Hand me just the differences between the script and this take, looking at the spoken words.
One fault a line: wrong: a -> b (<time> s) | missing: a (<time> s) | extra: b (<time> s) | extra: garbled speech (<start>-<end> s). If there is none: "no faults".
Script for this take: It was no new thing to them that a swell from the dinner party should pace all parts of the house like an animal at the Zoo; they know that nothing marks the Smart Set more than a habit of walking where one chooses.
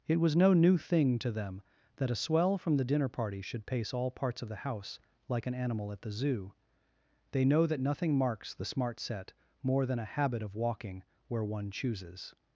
no faults